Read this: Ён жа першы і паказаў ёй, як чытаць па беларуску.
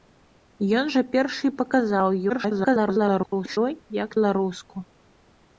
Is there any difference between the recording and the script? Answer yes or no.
yes